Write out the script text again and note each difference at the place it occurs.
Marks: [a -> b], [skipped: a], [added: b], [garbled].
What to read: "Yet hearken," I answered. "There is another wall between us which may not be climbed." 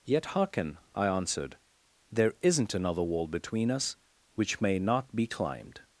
"Yet hearken," I answered. "There [is -> isn't] another wall between us which may not be climbed."